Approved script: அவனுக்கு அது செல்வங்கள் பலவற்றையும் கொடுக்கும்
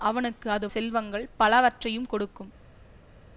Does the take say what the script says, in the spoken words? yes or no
yes